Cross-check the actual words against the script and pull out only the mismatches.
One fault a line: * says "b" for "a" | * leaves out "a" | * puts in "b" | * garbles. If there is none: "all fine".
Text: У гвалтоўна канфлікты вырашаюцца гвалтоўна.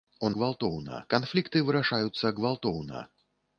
all fine